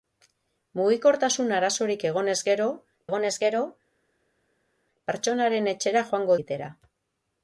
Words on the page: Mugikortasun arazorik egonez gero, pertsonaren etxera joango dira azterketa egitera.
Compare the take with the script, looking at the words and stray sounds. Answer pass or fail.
fail